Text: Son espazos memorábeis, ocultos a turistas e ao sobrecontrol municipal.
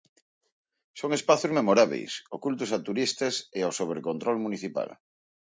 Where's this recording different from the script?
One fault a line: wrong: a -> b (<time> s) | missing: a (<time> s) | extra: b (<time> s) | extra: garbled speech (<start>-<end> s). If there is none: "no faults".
no faults